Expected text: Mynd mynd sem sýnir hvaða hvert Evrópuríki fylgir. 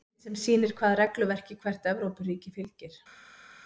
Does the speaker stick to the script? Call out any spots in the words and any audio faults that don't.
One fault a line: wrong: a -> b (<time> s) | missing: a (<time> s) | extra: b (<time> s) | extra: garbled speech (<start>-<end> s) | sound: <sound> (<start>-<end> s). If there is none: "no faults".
missing: mynd (0.2 s)
extra: regluverki (1.0 s)